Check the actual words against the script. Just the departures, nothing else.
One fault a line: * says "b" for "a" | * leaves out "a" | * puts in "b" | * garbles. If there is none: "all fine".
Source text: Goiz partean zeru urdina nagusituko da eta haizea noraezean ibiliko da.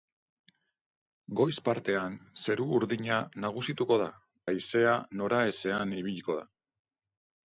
* leaves out "eta"